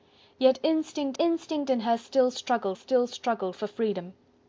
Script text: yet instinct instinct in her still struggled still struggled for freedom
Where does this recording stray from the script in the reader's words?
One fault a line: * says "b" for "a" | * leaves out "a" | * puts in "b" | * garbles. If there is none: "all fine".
all fine